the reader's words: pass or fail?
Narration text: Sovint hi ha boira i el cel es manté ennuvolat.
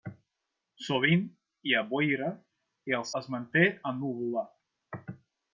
fail